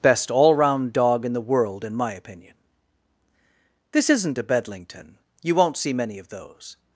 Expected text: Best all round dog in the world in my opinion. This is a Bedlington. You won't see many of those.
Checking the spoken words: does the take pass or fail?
fail